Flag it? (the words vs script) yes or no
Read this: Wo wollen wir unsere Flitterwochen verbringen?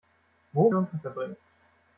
yes